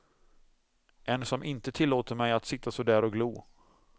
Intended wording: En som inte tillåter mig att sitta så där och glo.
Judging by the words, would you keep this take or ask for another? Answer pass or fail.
pass